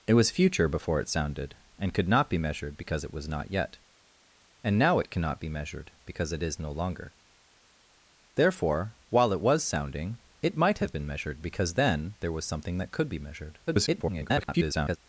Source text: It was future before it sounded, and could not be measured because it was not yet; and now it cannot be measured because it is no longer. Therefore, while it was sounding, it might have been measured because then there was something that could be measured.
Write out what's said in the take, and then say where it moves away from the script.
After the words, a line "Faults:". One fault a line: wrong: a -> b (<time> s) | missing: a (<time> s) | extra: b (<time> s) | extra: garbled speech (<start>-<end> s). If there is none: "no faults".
It was future before it sounded, and could not be measured because it was not yet; and now it cannot be measured because it is no longer. Therefore, while it was sounding, it might have been measured because then there was something that could be measured. [garbled]
Faults:
extra: garbled speech (13.7-15.0 s)